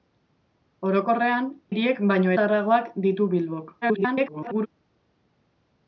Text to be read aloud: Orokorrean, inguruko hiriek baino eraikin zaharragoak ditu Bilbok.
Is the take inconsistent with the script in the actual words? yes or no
yes